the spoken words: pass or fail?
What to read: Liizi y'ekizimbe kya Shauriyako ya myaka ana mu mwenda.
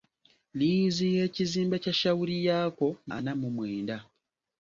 fail